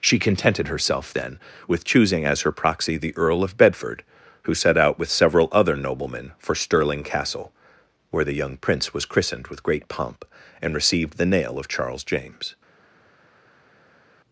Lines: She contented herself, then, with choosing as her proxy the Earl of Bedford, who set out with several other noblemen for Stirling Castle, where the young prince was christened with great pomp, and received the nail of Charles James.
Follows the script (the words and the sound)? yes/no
yes